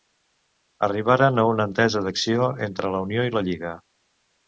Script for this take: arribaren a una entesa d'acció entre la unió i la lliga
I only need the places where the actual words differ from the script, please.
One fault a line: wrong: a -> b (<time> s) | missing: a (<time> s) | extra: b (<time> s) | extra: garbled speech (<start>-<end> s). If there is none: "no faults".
no faults